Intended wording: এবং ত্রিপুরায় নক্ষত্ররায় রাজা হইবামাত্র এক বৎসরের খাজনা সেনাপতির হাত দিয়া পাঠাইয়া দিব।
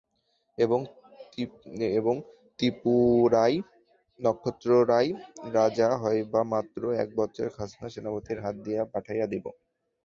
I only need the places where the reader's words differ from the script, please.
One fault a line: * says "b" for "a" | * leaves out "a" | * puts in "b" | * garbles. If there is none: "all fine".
all fine